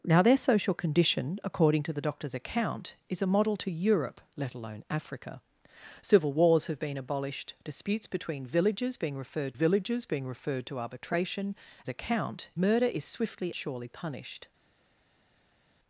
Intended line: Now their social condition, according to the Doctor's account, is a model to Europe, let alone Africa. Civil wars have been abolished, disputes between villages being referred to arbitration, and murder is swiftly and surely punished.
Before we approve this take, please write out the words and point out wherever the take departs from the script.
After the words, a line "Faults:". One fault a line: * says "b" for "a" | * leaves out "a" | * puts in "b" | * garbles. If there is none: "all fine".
Now their social condition, according to the Doctor's account, is a model to Europe, let alone Africa. Civil wars have been abolished, disputes between villages being referred villages being referred to arbitration, account murder is swiftly surely punished.
Faults:
* puts in "villages being referred"
* says "account" for "and"
* leaves out "and"